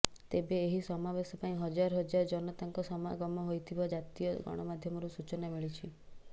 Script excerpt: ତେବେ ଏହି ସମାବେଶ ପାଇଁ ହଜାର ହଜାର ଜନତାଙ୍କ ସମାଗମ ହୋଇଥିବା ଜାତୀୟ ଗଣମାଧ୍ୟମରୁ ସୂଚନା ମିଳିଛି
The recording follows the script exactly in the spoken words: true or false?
true